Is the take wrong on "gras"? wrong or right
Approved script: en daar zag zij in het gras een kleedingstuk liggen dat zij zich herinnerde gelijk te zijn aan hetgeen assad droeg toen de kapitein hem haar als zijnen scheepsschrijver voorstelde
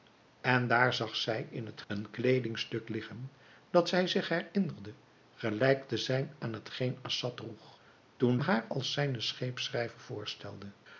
wrong